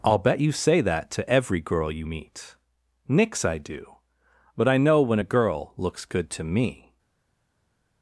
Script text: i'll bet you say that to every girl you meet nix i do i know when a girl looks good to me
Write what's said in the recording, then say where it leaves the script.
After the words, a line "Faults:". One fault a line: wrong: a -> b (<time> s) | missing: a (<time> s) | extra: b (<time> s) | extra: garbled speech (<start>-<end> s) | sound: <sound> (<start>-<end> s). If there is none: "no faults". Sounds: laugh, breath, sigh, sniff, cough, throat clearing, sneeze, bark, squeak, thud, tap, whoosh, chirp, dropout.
i'll bet you say that to every girl you meet nix i do but i know when a girl looks good to me
Faults:
extra: but (4.5 s)